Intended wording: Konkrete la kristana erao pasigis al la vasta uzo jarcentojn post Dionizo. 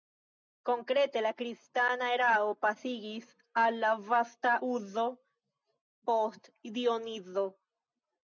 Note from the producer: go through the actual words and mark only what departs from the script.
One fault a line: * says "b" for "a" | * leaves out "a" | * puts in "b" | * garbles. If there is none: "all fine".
* leaves out "jarcentojn"